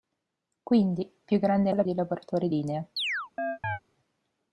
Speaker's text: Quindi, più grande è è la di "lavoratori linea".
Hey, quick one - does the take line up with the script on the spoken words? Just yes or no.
yes